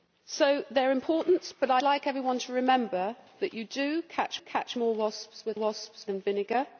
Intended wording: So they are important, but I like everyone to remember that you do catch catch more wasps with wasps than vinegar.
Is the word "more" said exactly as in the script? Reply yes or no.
yes